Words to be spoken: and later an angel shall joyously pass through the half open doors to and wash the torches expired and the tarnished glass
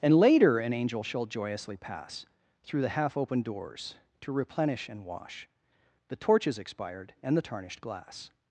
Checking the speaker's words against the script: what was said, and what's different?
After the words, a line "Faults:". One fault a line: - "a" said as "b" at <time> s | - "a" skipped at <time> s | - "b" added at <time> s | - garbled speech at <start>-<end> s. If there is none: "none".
and later an angel shall joyously pass through the half open doors to replenish and wash the torches expired and the tarnished glass
Faults:
- "replenish" added at 4.3 s